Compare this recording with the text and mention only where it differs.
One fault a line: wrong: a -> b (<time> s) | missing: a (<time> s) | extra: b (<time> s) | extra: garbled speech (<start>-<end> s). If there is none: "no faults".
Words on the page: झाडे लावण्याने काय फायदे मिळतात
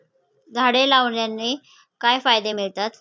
no faults